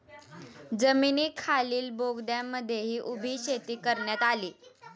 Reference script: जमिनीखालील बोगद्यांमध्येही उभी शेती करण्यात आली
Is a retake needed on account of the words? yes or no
no